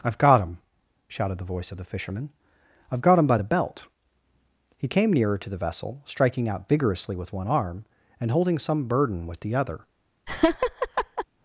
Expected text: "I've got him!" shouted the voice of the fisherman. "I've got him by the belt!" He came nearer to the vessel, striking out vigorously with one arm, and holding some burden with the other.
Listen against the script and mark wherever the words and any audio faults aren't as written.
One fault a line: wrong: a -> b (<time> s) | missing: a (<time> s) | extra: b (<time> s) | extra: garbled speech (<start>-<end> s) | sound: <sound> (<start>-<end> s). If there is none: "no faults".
sound: laugh (10.3-11.3 s)